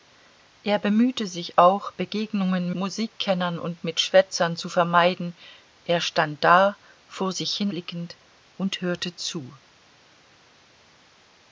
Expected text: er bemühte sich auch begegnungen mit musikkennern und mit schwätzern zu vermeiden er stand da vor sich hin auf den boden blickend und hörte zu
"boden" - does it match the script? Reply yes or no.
no